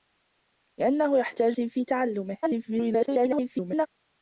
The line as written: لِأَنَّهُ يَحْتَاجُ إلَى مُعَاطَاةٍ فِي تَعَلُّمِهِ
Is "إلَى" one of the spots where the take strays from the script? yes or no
yes